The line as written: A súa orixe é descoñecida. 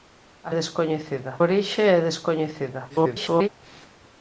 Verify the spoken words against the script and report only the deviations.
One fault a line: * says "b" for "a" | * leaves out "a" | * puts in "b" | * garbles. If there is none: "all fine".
* says "descoñecida" for "súa"
* garbles